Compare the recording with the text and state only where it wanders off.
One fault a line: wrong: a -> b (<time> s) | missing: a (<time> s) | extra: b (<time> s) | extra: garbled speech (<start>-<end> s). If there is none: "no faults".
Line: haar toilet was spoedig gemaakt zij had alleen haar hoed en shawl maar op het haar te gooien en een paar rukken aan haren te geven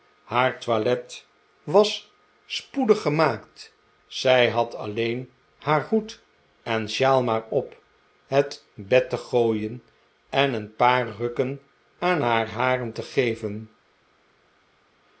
wrong: haar -> bed (8.7 s)
extra: haar (12.2 s)